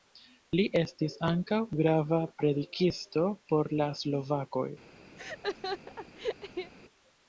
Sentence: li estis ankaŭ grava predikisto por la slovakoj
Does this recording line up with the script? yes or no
yes